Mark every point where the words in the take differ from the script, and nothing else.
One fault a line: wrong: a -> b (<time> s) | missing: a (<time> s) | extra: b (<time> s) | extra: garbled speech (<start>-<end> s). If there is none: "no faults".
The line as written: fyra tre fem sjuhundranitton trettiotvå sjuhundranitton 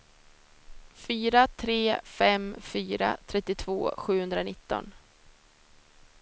wrong: sjuhundranitton -> fyra (2.6 s)